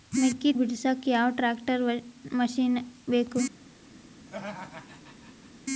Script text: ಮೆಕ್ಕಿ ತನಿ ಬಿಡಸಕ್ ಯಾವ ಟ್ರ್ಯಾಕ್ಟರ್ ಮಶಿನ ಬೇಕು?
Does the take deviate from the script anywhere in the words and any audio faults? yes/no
yes